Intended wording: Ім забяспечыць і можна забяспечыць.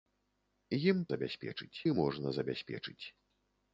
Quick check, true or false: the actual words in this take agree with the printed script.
true